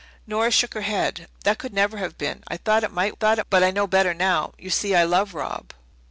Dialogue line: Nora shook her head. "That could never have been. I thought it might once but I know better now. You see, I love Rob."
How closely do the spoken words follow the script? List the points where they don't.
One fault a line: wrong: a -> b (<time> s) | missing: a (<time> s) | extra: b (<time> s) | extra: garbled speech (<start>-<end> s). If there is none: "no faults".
wrong: once -> thought (3.1 s)